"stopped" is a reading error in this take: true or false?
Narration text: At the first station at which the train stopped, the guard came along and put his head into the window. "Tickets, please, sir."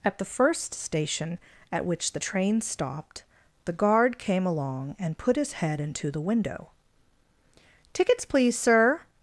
false